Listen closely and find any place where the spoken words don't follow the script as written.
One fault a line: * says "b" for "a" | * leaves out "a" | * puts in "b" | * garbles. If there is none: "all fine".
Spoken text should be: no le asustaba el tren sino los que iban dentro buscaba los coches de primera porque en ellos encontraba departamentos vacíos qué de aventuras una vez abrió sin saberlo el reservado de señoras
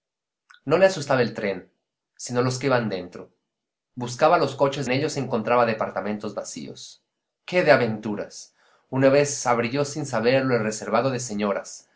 * leaves out "de primera porque"